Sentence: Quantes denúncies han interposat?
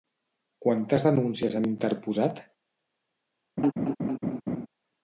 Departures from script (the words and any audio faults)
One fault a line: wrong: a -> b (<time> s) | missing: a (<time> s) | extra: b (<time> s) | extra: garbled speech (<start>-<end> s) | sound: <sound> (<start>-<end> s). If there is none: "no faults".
sound: laugh (3.6-4.7 s)